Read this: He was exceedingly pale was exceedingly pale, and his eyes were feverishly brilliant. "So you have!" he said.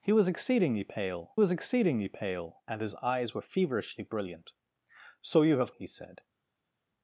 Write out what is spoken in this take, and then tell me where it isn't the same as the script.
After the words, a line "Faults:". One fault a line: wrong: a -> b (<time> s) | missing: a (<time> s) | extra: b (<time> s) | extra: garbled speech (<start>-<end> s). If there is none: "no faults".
He was exceedingly pale was exceedingly pale, and his eyes were feverishly brilliant. "So you have!" he said.
Faults:
no faults